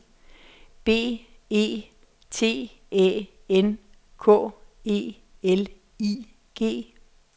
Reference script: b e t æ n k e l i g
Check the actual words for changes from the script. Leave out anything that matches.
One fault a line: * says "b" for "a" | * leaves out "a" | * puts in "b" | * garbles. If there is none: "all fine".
all fine